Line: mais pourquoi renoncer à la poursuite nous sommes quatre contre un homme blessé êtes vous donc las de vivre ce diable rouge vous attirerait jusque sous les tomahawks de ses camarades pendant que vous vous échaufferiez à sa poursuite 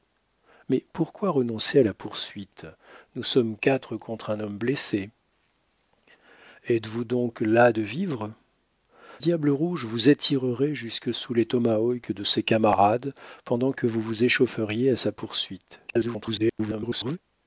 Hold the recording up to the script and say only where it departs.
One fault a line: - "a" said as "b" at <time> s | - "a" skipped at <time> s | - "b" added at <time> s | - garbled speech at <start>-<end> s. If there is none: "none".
- "ce" skipped at 8.3 s
- garbled speech at 15.9-17.2 s